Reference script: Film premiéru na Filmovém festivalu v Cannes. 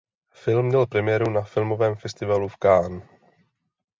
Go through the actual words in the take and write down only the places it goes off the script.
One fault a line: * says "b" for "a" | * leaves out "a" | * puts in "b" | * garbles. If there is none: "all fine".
* puts in "měl"